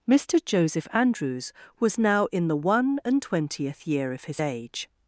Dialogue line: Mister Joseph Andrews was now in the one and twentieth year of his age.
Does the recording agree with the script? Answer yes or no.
yes